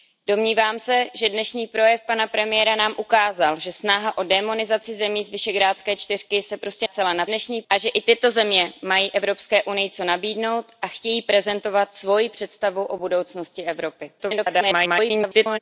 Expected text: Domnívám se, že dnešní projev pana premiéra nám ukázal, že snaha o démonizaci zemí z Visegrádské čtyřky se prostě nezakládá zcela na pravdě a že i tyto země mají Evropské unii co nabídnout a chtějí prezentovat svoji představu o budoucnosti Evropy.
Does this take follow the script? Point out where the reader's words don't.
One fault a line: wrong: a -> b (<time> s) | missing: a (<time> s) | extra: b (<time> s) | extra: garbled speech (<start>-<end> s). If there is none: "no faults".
missing: nezakládá (6.9 s)
wrong: pravdě -> dnešní (7.2 s)
extra: garbled speech (14.2-15.6 s)